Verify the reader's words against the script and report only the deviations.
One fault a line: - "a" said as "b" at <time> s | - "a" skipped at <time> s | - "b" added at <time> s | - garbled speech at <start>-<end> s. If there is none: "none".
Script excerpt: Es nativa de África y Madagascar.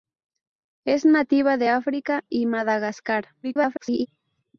- garbled speech at 3.4-4.1 s